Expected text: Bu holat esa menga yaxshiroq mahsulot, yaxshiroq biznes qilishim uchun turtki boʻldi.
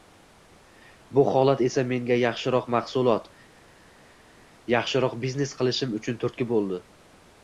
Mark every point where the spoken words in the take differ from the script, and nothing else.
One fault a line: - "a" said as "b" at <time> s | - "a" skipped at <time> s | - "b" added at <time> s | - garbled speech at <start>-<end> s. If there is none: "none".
none